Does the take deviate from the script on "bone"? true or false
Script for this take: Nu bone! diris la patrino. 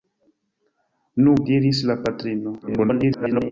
true